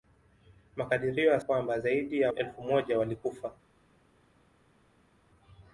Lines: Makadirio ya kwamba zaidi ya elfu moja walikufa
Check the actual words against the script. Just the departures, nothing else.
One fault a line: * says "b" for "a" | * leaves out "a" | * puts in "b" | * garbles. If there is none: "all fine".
all fine